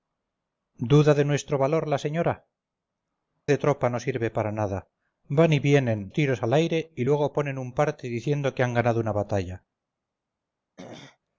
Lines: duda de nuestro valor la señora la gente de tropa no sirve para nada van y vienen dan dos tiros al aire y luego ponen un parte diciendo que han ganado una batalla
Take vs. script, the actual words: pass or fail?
fail